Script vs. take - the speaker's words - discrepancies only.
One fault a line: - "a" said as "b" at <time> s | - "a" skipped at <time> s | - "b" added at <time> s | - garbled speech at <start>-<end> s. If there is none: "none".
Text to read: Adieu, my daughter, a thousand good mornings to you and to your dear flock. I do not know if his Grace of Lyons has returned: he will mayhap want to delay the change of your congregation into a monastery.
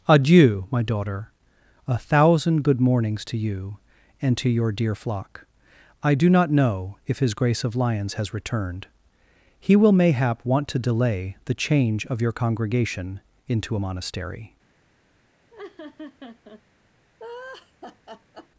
none